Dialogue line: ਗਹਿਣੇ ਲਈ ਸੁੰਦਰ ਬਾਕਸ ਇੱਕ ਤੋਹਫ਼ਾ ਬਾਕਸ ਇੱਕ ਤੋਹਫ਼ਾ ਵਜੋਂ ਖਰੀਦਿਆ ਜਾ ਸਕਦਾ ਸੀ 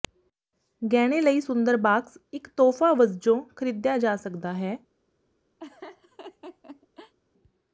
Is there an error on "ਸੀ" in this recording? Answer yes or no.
yes